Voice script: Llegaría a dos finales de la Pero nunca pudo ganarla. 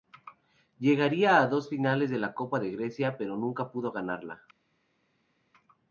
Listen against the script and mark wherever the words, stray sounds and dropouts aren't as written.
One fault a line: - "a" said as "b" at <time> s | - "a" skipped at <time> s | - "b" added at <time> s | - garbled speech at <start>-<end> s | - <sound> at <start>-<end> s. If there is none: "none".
- "Copa de Grecia" added at 2.3 s